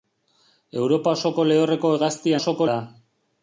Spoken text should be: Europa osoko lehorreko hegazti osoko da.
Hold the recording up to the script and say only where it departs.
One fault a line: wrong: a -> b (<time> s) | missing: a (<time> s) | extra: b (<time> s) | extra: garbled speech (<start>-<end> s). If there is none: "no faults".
no faults